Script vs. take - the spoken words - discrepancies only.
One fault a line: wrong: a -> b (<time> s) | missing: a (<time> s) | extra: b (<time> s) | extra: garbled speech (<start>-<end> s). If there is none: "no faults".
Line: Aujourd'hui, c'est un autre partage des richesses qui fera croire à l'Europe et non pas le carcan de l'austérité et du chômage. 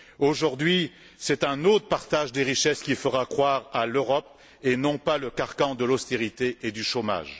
no faults